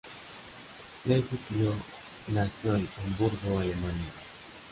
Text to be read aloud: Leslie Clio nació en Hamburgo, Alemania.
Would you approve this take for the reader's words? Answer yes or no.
yes